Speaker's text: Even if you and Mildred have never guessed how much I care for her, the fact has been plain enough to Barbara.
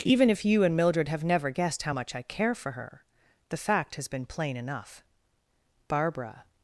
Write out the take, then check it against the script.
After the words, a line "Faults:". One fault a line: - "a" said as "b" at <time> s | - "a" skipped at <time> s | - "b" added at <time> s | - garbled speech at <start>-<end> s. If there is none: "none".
Even if you and Mildred have never guessed how much I care for her, the fact has been plain enough Barbara.
Faults:
- "to" skipped at 5.0 s